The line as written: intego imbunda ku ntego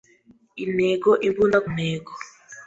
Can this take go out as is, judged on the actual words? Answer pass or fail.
fail